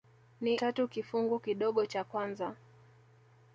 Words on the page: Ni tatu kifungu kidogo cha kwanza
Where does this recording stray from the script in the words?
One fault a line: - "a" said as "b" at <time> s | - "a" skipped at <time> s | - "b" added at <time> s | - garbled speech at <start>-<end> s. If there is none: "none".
none